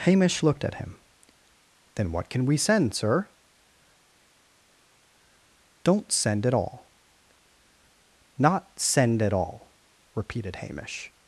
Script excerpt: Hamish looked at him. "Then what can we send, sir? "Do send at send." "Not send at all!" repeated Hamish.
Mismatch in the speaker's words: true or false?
true